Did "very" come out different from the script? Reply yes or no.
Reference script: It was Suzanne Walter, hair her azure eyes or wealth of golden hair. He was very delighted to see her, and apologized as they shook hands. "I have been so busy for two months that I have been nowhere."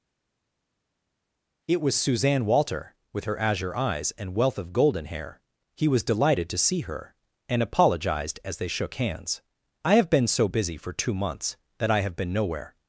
yes